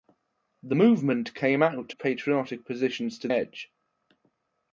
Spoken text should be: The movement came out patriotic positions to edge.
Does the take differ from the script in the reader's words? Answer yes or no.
no